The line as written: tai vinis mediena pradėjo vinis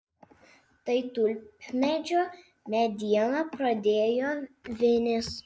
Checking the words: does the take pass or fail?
fail